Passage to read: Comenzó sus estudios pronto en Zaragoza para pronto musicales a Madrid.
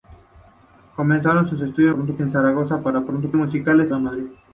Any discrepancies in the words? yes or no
no